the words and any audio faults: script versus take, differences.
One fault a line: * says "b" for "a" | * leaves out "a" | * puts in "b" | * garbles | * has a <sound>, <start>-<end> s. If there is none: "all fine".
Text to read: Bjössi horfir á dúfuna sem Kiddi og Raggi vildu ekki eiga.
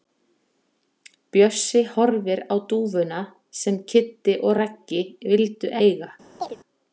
* leaves out "ekki"
* has a chirp, 6.4-6.6 s